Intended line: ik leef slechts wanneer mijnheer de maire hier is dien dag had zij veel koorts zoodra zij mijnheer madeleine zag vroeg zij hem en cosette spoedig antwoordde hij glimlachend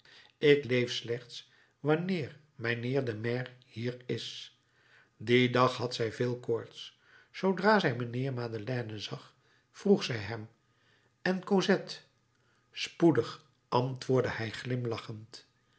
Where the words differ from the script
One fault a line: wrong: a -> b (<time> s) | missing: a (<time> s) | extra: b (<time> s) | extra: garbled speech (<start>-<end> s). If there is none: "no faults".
no faults